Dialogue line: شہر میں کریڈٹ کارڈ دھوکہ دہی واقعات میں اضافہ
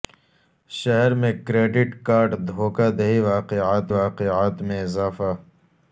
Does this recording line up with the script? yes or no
no